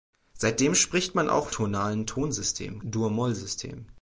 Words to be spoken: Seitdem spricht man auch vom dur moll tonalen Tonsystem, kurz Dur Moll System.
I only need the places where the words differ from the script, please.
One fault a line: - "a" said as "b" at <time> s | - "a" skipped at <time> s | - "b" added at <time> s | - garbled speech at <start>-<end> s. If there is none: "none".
- "vom dur moll" skipped at 1.5 s
- "kurz" skipped at 2.8 s